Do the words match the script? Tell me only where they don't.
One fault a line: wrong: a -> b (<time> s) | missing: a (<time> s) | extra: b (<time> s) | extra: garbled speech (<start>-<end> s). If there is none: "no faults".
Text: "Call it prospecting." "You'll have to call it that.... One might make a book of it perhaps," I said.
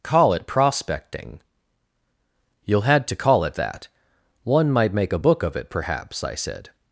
wrong: have -> had (2.8 s)